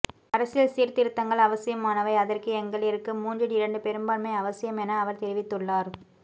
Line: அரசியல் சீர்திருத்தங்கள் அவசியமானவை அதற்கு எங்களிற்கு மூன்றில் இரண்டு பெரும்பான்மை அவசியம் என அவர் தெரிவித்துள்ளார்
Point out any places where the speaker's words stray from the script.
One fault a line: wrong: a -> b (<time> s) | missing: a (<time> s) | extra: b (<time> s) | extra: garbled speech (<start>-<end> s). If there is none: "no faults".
no faults